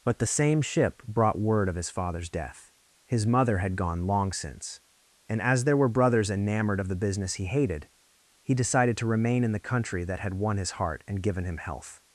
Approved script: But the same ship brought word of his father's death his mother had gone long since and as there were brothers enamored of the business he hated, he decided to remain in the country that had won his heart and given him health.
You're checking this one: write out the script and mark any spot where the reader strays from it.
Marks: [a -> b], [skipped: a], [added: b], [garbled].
But the same ship brought word of his father's death his mother had gone long since and as there were brothers enamored of the business he hated, he decided to remain in the country that had won his heart and given him health.